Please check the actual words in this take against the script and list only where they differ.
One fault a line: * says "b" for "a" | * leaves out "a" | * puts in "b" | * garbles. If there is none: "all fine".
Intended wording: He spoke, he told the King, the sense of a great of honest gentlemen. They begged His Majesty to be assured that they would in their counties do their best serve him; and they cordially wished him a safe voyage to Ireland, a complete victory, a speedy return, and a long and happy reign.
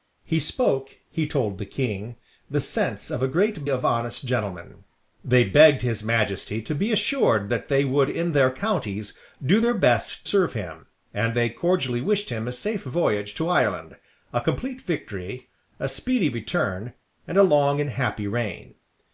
all fine